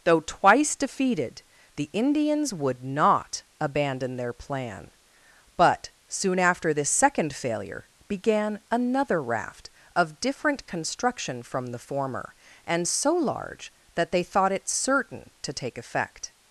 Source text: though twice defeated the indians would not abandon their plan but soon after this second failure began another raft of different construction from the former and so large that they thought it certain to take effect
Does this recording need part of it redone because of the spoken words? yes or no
no